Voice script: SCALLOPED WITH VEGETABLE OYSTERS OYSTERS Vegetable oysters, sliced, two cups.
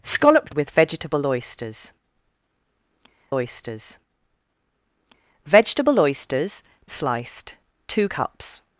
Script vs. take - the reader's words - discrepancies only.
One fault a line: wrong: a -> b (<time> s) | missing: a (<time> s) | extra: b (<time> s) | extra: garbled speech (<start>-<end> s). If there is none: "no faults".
no faults